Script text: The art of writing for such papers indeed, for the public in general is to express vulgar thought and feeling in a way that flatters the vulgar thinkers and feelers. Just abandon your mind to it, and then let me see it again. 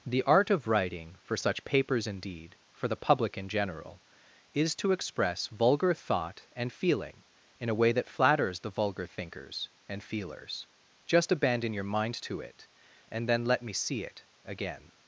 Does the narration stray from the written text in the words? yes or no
no